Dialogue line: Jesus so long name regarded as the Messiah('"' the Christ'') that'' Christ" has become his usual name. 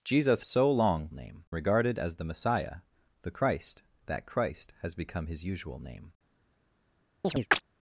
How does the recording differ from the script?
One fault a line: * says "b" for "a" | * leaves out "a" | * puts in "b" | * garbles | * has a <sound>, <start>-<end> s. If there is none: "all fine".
* has a chirp, 7.2-7.6 s